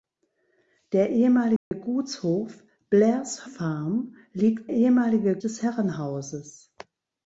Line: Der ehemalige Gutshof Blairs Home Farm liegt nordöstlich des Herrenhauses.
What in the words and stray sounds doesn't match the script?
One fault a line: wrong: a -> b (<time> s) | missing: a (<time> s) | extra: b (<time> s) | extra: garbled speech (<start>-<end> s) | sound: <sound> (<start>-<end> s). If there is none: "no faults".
sound: dropout (1.6-1.7 s)
missing: Home (3.5 s)
wrong: nordöstlich -> ehemalige (4.7 s)